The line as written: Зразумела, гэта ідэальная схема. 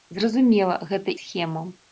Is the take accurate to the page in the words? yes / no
no